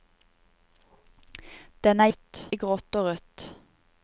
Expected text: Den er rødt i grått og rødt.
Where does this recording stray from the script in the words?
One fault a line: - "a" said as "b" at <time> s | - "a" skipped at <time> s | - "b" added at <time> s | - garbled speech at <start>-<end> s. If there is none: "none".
none